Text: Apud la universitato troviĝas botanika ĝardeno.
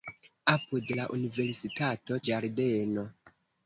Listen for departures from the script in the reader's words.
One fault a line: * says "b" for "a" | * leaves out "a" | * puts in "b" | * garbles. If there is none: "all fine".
* leaves out "troviĝas botanika"